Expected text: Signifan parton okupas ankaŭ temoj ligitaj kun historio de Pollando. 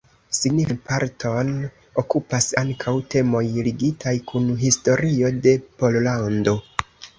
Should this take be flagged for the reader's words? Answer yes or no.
no